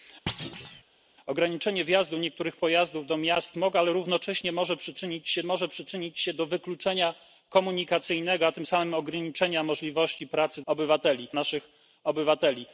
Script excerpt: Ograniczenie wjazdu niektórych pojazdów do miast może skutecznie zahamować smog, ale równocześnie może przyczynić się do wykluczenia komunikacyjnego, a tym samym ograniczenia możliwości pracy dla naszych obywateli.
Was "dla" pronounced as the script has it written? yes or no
no